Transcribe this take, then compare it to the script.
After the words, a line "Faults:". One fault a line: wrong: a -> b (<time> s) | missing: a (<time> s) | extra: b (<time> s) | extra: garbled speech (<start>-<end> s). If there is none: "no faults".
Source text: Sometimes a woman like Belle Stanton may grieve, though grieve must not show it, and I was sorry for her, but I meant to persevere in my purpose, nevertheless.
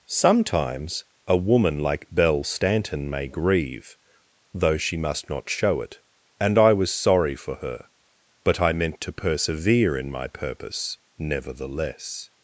Sometimes a woman like Belle Stanton may grieve, though she must not show it, and I was sorry for her, but I meant to persevere in my purpose, nevertheless.
Faults:
wrong: grieve -> she (4.8 s)